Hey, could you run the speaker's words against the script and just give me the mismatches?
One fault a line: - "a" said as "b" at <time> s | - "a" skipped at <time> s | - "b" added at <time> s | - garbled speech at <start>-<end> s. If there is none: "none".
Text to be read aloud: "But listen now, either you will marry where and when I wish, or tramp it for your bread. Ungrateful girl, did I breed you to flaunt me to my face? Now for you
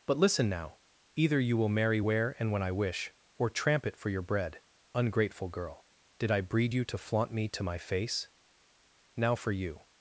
none